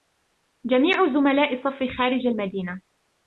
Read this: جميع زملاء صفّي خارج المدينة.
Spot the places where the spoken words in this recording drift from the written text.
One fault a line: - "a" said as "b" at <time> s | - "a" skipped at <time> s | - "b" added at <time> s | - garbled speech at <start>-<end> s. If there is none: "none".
none